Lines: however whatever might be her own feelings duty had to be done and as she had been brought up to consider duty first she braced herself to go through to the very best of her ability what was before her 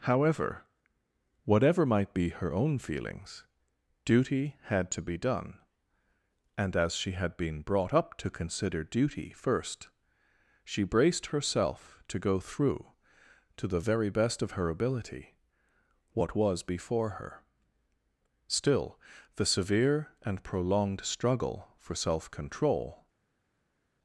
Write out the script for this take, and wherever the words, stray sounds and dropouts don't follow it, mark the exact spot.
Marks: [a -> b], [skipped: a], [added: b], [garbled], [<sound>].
however whatever might be her own feelings duty had to be done and as she had been brought up to consider duty first she braced herself to go through to the very best of her ability what was before her [added: still the severe and prolonged struggle for self control]